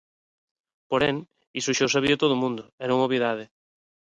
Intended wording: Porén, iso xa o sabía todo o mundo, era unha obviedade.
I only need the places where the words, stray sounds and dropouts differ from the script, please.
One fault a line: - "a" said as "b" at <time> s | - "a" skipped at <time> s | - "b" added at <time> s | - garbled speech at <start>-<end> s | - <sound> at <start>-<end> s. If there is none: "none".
none